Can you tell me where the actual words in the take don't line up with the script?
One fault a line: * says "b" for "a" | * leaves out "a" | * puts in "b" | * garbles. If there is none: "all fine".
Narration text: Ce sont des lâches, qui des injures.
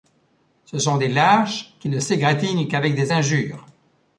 * puts in "ne s'égratignent qu'avec"